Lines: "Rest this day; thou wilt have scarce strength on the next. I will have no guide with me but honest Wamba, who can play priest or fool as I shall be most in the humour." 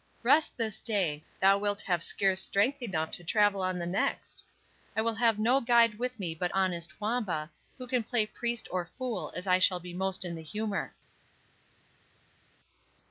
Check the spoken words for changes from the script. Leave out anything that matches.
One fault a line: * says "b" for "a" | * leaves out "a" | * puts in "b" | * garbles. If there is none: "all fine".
* puts in "enough to travel"